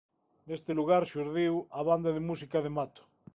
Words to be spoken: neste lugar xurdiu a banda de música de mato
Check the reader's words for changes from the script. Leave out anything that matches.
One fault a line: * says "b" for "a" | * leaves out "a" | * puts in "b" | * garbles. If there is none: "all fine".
all fine